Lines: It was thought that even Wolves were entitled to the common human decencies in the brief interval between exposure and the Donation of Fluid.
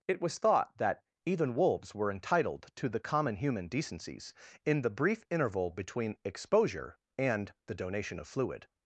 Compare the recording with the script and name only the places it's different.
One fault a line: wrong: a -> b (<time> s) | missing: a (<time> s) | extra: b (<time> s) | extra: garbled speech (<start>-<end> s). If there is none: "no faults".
no faults